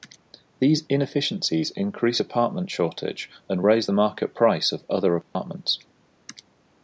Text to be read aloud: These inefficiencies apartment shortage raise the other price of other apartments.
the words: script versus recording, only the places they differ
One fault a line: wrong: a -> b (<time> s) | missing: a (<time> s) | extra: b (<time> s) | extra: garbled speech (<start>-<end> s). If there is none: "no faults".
extra: increase (1.8 s)
extra: and (3.5 s)
wrong: other -> market (3.9 s)